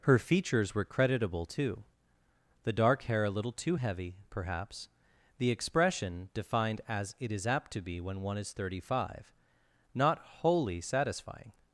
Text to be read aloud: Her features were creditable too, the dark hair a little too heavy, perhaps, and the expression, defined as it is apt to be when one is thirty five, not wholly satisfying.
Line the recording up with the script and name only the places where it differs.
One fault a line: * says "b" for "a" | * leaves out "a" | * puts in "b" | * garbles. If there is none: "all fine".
* leaves out "and"